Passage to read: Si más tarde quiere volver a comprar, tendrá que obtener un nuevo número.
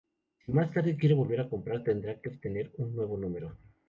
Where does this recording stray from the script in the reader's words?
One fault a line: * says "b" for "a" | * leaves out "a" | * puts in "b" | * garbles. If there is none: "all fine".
all fine